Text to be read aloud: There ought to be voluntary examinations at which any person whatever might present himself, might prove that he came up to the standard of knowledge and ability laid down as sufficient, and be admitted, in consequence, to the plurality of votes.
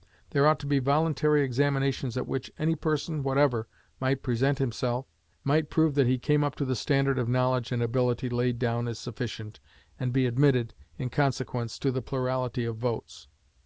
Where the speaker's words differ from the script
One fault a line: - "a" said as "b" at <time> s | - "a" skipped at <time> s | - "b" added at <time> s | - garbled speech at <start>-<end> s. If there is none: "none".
none